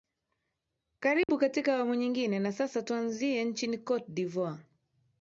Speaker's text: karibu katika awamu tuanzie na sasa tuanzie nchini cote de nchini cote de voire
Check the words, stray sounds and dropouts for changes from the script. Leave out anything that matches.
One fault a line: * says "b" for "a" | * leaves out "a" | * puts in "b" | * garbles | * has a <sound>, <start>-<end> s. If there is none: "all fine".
* has a dropout, 1.2-1.3 s
* says "nyingine" for "tuanzie"
* leaves out "nchini cote de"